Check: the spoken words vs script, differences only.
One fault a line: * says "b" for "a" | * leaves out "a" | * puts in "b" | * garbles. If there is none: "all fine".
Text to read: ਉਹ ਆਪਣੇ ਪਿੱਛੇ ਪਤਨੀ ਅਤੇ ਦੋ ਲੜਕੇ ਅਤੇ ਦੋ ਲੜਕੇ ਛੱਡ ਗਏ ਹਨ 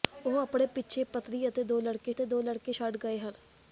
all fine